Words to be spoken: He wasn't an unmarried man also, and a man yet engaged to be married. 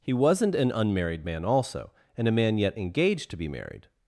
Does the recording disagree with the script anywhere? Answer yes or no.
no